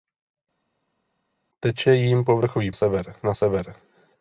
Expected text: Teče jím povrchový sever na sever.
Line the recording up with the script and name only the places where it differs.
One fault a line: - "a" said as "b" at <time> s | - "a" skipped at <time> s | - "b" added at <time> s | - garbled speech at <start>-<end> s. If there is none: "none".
none